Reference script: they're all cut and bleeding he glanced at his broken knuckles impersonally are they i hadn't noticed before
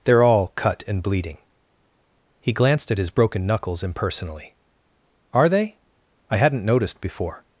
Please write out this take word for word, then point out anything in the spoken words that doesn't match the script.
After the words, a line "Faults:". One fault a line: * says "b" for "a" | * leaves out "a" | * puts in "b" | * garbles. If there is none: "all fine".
they're all cut and bleeding he glanced at his broken knuckles impersonally are they i hadn't noticed before
Faults:
all fine